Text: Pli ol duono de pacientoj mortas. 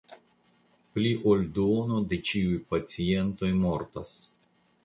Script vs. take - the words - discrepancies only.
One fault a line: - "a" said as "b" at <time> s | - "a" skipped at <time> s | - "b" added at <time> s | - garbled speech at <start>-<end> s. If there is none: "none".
- "ĉiuj" added at 2.3 s